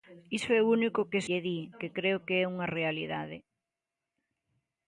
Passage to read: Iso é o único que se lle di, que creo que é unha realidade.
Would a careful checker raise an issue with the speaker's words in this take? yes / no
yes